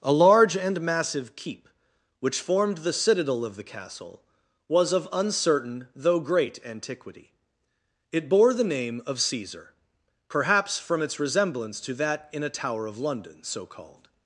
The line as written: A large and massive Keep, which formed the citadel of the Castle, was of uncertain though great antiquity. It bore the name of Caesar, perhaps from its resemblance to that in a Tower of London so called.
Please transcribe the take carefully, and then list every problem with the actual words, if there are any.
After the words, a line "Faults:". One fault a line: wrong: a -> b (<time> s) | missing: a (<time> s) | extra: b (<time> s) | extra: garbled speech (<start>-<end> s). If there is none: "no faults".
A large and massive Keep, which formed the citadel of the Castle, was of uncertain though great antiquity. It bore the name of Caesar, perhaps from its resemblance to that in a Tower of London so called.
Faults:
no faults